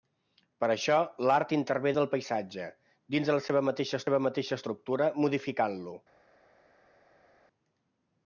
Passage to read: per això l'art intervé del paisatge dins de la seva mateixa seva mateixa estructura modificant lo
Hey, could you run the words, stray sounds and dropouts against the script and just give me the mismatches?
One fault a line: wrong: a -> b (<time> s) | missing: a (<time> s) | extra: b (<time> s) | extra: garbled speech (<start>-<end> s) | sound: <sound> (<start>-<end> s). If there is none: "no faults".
no faults